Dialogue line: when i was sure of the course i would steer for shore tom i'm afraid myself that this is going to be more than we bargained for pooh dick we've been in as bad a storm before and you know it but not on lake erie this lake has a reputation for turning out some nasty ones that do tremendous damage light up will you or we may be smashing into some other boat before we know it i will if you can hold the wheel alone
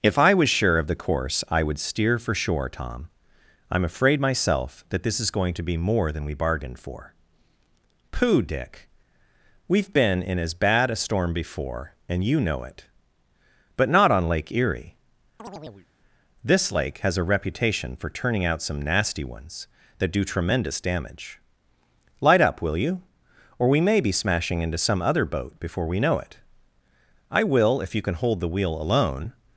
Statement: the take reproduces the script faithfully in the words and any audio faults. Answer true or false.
false